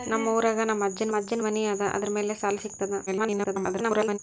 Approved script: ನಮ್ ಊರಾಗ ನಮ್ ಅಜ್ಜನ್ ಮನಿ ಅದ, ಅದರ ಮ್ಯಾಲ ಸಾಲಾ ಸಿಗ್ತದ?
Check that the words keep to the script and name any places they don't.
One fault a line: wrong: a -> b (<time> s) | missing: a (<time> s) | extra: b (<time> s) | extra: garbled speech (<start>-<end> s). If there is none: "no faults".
extra: ಅಜ್ಜನ್ (1.1 s)
extra: garbled speech (3.1-4.2 s)